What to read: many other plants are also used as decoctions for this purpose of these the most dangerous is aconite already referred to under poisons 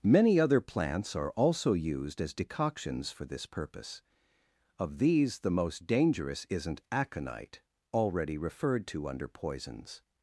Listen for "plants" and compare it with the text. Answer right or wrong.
right